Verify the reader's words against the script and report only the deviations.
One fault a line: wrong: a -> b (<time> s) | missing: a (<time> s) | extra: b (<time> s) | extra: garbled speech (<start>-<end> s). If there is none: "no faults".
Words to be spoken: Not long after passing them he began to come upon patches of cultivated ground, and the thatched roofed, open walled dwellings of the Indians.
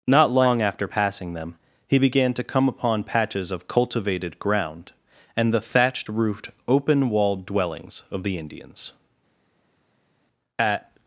extra: At (10.6 s)